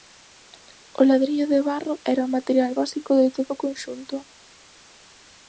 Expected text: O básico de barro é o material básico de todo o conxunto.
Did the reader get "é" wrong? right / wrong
wrong